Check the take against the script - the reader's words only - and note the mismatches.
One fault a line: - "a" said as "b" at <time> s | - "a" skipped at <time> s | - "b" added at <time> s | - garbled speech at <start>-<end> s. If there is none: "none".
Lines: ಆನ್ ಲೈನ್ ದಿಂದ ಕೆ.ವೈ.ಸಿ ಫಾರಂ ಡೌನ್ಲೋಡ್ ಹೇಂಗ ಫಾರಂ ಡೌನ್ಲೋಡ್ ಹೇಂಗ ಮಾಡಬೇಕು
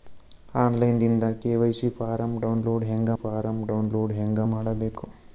none